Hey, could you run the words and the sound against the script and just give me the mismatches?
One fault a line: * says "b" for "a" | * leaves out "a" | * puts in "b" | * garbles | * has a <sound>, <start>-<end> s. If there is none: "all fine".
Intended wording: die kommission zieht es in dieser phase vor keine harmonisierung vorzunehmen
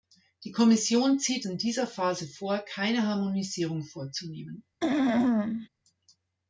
* leaves out "es"
* has a throat clearing, 4.8-5.7 s